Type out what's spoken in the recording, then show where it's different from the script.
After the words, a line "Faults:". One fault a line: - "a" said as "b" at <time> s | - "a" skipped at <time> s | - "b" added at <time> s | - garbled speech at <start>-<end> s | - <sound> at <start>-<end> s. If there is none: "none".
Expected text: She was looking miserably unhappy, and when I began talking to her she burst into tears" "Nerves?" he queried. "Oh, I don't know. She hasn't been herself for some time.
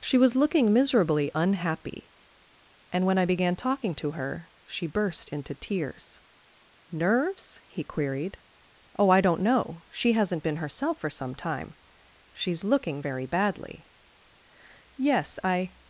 She was looking miserably unhappy, and when I began talking to her she burst into tears" "Nerves?" he queried. "Oh, I don't know. She hasn't been herself for some time. She's looking very badly." "Yes, I
Faults:
- "She's looking very badly Yes I" added at 12.3 s